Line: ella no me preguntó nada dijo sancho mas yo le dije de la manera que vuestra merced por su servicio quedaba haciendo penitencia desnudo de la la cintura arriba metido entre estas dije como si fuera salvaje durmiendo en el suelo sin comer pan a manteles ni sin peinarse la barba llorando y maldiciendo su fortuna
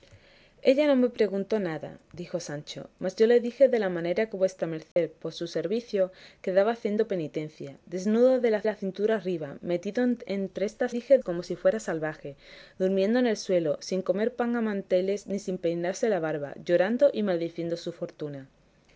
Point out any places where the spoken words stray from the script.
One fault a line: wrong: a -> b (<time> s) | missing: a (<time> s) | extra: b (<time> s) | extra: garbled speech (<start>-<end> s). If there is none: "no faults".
no faults